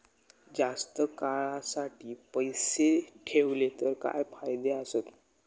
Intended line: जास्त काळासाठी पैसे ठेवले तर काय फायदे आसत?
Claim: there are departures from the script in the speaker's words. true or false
false